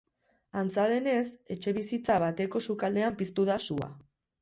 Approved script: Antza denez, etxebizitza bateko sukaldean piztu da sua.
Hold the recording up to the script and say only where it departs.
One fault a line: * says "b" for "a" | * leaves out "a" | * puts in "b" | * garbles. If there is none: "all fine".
all fine